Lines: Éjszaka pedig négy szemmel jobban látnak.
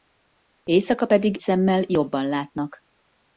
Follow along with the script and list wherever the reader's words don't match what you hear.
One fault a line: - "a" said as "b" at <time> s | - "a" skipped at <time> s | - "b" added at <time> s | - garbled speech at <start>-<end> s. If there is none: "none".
- "négy" skipped at 1.4 s